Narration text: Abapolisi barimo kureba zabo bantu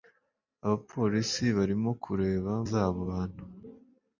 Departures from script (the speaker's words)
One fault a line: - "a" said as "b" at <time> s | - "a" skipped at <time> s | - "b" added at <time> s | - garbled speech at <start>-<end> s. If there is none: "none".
none